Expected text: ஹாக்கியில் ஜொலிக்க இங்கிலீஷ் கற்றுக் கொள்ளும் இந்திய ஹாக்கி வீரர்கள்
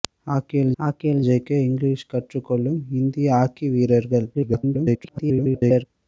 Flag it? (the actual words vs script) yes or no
yes